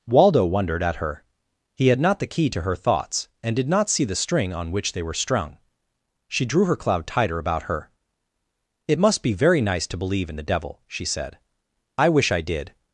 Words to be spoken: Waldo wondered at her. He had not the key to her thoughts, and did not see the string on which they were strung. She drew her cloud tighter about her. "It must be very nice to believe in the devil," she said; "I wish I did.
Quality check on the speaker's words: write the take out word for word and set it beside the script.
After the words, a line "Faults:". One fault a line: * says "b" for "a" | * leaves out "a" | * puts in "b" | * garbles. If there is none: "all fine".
Waldo wondered at her. He had not the key to her thoughts, and did not see the string on which they were strung. She drew her cloud tighter about her. "It must be very nice to believe in the devil," she said; "I wish I did.
Faults:
all fine